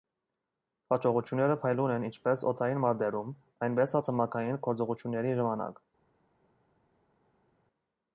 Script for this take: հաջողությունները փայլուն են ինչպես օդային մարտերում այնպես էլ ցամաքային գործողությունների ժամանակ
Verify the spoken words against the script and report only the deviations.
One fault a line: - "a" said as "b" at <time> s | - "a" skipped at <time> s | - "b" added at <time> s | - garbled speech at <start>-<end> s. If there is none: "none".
none